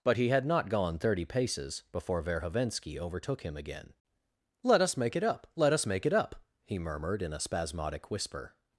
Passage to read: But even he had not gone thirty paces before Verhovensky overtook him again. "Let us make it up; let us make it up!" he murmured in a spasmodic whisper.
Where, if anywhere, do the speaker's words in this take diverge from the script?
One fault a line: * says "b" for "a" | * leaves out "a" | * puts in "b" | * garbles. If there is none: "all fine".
* leaves out "even"